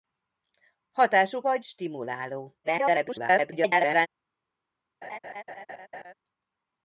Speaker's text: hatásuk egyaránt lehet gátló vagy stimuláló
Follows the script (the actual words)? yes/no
no